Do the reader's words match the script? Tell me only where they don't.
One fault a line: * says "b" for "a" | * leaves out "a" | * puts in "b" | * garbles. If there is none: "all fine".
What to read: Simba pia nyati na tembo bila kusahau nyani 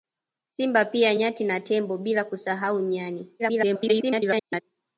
* garbles